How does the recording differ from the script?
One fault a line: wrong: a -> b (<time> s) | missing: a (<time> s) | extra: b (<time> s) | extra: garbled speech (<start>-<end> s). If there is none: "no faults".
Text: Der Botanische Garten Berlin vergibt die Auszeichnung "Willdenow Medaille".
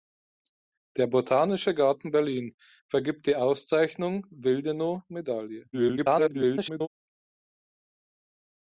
extra: garbled speech (5.7-6.9 s)